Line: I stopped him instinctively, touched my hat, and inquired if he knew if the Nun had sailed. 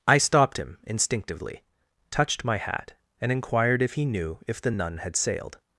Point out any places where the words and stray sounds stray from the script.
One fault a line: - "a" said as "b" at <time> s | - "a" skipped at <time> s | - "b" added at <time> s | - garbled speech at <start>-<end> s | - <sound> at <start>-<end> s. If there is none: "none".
none